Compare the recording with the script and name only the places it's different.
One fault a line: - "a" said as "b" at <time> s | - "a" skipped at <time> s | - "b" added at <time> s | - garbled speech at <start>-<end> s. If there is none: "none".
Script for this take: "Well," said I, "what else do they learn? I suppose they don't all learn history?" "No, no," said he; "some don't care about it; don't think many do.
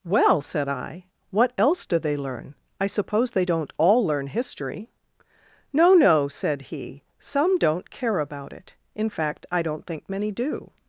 - "in fact I" added at 8.9 s